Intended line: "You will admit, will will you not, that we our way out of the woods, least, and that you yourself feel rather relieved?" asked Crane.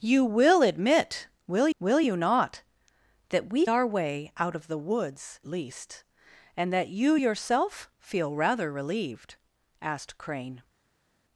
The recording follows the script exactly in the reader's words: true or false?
true